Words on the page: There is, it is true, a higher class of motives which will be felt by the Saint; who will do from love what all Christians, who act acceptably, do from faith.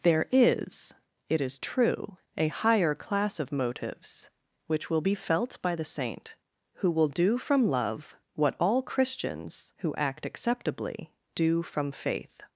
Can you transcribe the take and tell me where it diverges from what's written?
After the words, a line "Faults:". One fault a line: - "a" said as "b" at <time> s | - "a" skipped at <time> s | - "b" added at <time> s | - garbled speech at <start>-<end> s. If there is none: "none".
There is, it is true, a higher class of motives which will be felt by the Saint; who will do from love what all Christians, who act acceptably, do from faith.
Faults:
none